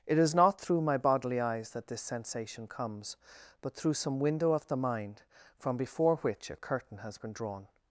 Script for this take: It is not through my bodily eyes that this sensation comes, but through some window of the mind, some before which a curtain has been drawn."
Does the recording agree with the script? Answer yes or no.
no